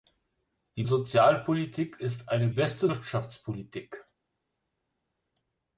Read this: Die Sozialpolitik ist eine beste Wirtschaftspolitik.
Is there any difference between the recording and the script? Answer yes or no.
no